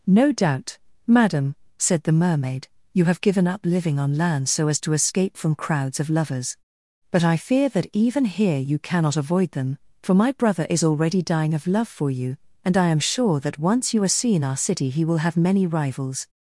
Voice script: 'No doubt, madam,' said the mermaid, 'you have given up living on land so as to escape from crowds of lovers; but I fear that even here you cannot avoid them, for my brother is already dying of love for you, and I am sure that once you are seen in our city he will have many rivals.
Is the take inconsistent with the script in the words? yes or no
yes